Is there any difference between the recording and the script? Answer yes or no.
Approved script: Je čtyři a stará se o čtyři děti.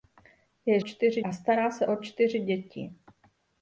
no